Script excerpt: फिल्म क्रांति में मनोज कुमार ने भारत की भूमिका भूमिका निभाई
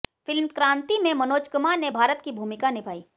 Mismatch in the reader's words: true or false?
true